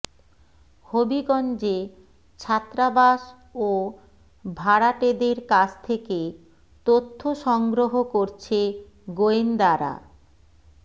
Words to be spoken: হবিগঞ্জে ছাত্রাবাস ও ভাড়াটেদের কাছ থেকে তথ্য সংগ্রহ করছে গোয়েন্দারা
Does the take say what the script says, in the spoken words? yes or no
yes